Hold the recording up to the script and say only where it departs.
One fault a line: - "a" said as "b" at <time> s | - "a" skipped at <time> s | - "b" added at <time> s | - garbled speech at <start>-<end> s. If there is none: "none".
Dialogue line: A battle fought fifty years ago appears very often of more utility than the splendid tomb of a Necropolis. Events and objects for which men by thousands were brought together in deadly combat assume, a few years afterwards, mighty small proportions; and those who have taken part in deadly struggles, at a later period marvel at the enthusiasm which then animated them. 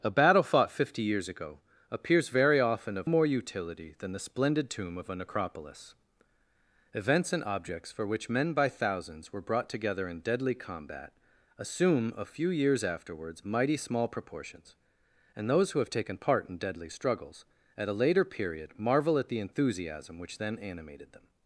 none